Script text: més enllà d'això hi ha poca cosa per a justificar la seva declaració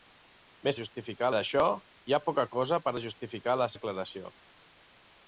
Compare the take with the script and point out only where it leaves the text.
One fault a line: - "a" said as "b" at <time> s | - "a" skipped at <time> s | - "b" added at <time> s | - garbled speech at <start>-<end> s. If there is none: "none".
- "enllà" said as "justificar" at 0.8 s
- "seva" skipped at 3.7 s